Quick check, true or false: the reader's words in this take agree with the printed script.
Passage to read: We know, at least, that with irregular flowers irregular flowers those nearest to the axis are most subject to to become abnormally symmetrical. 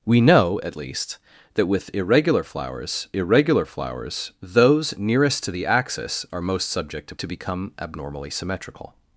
true